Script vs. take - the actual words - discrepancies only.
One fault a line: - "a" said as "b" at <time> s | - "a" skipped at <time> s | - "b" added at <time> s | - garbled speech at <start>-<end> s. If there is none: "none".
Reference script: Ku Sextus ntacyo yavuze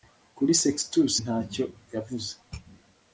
- "Ku" said as "Kuri" at 0.3 s